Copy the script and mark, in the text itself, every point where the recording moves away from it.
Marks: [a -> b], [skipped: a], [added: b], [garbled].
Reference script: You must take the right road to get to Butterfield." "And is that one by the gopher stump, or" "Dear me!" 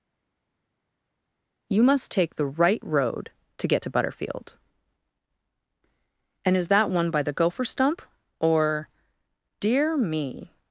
You must take the right road to get to Butterfield." "And is that one by the gopher stump, or" "Dear me!"